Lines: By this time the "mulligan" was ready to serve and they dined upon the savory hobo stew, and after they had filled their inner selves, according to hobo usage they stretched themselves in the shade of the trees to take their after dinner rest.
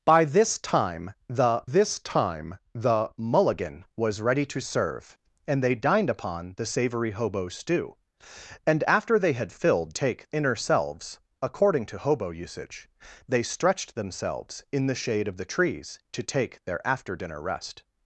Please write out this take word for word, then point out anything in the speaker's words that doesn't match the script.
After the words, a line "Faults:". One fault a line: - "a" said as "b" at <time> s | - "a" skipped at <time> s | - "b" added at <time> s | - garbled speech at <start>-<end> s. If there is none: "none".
By this time the this time the "mulligan" was ready to serve and they dined upon the savory hobo stew, and after they had filled take inner selves, according to hobo usage they stretched themselves in the shade of the trees to take their after dinner rest.
Faults:
- "this time the" added at 1.6 s
- "their" said as "take" at 9.9 s